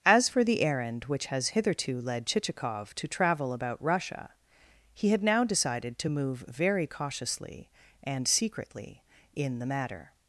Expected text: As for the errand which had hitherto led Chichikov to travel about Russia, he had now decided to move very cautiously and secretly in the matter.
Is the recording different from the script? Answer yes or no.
yes